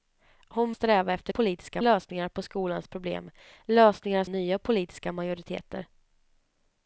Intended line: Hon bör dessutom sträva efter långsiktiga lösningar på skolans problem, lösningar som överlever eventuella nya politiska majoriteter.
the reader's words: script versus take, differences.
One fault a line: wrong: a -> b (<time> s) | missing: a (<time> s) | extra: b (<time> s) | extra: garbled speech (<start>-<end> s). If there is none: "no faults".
missing: bör dessutom (0.7 s)
wrong: långsiktiga -> politiska (1.3 s)
missing: som överlever eventuella (4.2 s)